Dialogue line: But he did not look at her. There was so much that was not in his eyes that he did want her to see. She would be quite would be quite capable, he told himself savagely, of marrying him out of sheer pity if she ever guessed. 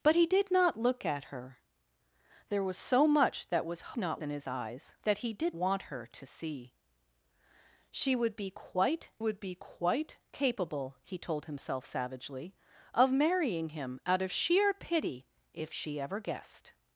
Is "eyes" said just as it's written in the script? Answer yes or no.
yes